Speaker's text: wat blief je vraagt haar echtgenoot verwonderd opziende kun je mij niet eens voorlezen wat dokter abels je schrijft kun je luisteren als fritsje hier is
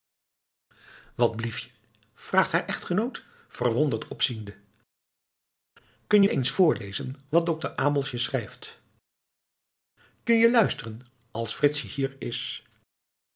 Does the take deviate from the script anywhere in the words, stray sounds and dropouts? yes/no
yes